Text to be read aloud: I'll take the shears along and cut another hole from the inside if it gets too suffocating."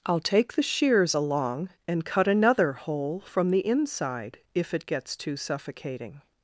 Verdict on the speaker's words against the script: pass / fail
pass